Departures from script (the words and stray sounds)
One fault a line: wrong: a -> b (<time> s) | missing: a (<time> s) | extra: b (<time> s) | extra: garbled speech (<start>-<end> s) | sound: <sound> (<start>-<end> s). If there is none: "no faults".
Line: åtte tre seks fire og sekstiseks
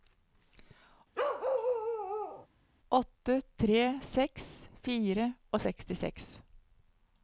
sound: bark (1.1-2.5 s)